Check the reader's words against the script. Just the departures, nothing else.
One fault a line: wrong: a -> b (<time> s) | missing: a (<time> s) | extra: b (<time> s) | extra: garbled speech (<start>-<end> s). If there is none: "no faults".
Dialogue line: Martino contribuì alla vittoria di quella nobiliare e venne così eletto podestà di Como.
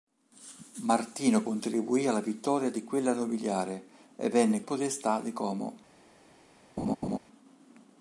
missing: così eletto (4.6 s)